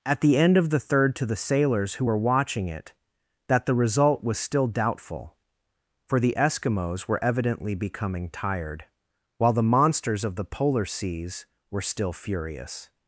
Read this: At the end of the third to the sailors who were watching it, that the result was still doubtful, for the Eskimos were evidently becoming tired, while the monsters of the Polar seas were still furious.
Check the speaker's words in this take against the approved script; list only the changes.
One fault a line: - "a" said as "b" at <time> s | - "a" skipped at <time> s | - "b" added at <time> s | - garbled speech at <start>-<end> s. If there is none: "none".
none